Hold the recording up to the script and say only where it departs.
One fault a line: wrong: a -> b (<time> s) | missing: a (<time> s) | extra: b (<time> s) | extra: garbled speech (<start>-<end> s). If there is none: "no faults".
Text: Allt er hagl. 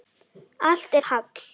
no faults